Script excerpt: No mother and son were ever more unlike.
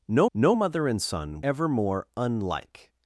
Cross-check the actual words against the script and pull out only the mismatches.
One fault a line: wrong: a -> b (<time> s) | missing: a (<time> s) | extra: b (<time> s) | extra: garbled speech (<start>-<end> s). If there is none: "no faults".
extra: no (0.3 s)
missing: were (1.4 s)